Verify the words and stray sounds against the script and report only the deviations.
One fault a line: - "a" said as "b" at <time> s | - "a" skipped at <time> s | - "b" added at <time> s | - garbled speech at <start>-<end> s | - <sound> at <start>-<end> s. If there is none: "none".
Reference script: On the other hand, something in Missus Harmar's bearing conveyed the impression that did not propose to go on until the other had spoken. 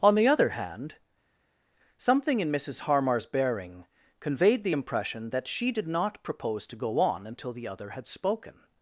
- "she" added at 5.5 s